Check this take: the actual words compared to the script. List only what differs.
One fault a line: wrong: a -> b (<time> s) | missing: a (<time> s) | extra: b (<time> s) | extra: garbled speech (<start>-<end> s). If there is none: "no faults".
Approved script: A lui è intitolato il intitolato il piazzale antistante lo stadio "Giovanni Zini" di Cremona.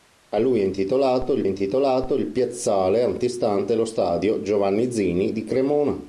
no faults